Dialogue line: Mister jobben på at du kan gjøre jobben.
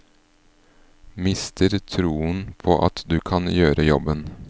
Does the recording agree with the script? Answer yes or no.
no